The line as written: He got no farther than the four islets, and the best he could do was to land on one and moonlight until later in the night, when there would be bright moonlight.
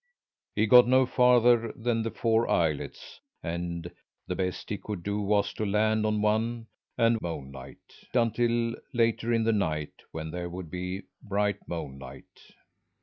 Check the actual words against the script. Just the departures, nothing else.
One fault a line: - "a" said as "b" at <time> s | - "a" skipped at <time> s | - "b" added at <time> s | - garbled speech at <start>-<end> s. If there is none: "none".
none